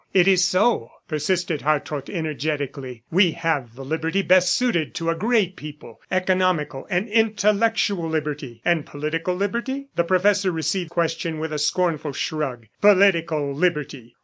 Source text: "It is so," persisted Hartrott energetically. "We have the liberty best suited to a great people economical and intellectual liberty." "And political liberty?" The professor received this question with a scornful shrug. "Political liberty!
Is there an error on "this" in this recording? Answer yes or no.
yes